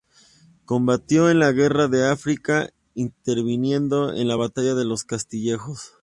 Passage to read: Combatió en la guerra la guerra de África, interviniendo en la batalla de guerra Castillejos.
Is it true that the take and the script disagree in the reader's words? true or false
true